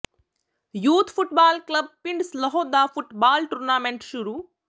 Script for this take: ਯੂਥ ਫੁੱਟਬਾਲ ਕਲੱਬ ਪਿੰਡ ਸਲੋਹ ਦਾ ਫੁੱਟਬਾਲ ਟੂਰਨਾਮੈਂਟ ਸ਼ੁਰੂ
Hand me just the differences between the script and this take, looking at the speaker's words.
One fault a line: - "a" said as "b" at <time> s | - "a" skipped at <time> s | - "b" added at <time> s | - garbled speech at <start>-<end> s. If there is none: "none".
none